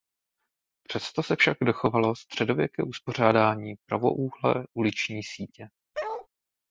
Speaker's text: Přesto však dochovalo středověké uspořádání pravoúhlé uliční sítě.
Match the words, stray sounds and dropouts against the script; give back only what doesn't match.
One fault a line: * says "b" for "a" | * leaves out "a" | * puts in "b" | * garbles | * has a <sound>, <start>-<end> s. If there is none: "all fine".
* puts in "se"
* has a bark, 5.9-6.3 s